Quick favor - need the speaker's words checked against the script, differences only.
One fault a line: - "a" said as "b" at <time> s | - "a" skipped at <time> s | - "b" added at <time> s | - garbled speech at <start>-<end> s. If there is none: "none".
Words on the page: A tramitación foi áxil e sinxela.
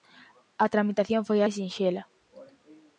- "áxil" skipped at 1.4 s